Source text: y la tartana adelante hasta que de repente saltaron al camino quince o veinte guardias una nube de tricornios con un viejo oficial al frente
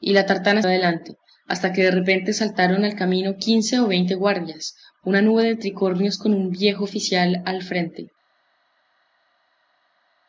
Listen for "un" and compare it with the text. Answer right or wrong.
right